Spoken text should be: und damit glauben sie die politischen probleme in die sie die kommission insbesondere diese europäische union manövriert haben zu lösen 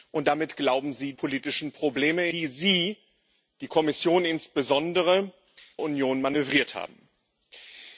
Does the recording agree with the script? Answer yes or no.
no